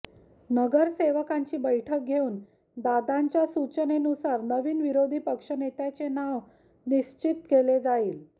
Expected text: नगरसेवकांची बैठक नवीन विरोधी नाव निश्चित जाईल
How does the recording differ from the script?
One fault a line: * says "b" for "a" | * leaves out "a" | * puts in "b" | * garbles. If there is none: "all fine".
* puts in "घेऊन दादांच्या सूचनेनुसार"
* puts in "पक्षनेत्याचे"
* puts in "केले"